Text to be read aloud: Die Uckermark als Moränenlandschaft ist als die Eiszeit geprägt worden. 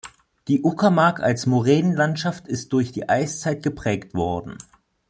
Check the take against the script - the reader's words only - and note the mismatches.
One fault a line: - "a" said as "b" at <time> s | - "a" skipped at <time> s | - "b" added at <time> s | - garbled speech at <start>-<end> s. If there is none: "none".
- "als" said as "durch" at 2.7 s